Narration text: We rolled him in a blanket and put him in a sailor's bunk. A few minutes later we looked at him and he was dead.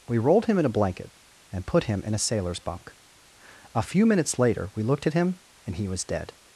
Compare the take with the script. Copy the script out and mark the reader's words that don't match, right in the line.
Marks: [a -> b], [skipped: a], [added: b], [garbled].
We rolled him in a blanket and put him in a sailor's bunk. A few minutes later we looked at him and he was dead.